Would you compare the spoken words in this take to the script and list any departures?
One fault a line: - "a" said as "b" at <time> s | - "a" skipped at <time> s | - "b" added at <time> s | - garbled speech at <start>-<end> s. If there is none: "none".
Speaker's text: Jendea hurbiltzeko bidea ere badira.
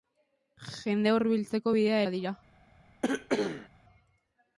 - "ere" skipped at 2.0 s